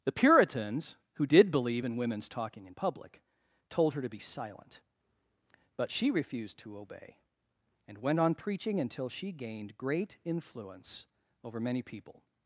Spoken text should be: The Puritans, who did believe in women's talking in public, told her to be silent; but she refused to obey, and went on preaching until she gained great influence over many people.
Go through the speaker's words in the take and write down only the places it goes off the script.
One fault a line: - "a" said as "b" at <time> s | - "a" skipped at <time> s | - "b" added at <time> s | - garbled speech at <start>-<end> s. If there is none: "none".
none